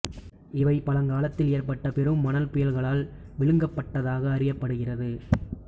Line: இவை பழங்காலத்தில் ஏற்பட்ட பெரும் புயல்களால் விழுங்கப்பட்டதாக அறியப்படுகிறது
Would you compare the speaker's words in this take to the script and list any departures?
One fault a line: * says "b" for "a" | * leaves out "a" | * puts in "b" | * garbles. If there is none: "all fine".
* puts in "மணல்"